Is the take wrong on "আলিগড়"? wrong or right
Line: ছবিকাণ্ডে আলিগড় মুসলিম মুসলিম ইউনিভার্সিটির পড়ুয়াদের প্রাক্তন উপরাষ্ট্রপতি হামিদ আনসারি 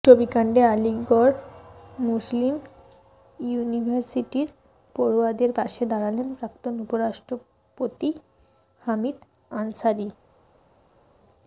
right